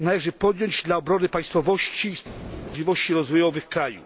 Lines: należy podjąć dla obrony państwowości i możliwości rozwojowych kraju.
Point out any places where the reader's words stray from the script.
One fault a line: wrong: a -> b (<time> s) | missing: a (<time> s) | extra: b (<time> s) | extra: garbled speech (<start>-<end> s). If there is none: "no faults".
no faults